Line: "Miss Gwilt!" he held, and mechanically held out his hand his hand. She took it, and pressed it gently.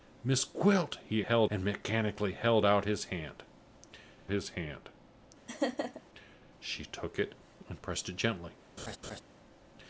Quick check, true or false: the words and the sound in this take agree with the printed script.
false